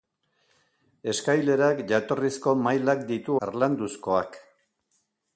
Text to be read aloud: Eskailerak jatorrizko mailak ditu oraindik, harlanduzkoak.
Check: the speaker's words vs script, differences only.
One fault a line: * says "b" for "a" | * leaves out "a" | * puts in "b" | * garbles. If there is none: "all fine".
* leaves out "oraindik"